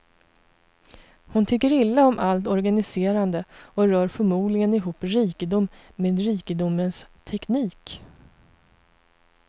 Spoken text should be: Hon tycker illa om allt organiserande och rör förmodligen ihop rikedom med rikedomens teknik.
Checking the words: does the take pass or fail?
pass